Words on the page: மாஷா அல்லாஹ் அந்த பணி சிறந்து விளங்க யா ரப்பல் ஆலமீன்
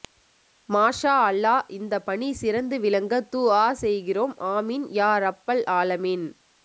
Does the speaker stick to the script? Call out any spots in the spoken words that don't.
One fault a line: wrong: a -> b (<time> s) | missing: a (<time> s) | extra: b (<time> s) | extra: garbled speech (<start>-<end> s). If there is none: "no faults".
wrong: அந்த -> இந்த (1.7 s)
extra: துஆ செய்கிறோம் ஆமீன் (3.3 s)